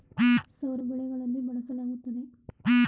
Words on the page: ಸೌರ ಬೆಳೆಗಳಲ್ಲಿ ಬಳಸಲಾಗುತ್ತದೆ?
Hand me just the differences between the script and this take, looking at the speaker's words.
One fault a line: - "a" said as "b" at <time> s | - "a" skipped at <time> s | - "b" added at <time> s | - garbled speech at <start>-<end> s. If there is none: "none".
none